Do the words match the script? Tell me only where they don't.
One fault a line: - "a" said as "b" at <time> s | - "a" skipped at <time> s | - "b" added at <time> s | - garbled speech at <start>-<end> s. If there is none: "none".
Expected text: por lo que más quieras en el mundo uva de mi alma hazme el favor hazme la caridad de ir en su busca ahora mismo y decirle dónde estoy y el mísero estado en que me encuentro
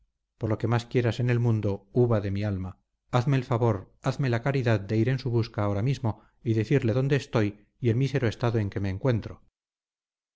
none